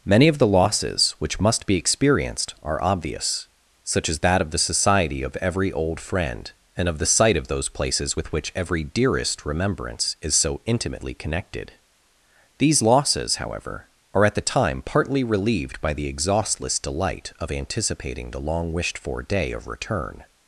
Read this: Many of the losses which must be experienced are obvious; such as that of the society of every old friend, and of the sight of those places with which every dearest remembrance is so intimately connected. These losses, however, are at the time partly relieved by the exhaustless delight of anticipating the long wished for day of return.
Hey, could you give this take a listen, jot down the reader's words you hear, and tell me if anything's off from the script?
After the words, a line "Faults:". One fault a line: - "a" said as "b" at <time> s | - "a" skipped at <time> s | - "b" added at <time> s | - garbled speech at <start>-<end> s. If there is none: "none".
Many of the losses which must be experienced are obvious; such as that of the society of every old friend, and of the sight of those places with which every dearest remembrance is so intimately connected. These losses, however, are at the time partly relieved by the exhaustless delight of anticipating the long wished for day of return.
Faults:
none